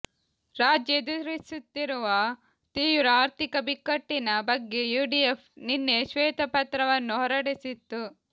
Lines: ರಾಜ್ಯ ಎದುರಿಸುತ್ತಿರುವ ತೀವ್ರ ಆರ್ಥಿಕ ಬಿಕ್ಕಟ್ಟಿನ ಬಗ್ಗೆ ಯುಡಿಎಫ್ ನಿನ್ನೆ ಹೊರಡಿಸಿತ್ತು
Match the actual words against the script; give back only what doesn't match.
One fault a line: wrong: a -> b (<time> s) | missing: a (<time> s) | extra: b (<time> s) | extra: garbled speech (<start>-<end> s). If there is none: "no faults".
extra: ಶ್ವೇತಪತ್ರವನ್ನು (6.1 s)